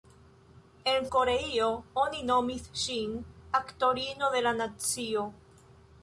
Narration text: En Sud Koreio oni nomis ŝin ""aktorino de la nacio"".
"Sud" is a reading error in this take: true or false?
true